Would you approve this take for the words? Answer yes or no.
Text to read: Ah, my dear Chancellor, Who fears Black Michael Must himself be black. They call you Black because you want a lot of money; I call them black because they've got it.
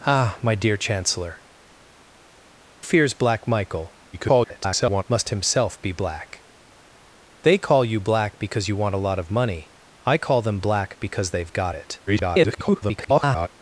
no